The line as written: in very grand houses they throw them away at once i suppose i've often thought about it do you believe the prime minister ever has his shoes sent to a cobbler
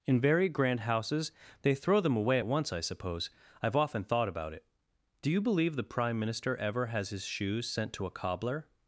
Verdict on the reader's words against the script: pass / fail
pass